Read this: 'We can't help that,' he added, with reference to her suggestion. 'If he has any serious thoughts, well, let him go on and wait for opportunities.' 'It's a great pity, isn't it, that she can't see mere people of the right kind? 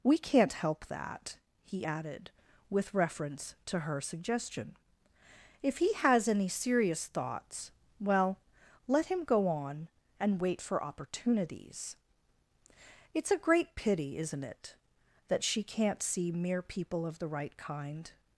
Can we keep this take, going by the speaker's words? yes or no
yes